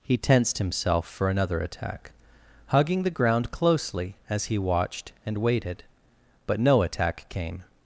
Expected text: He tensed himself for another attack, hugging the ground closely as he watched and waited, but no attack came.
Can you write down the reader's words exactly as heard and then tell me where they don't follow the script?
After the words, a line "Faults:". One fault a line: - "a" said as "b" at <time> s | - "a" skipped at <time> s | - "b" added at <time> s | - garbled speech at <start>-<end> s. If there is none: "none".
He tensed himself for another attack, hugging the ground closely as he watched and waited, but no attack came.
Faults:
none